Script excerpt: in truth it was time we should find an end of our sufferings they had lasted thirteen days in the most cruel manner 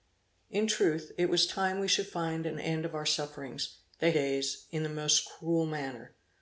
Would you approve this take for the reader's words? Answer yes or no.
no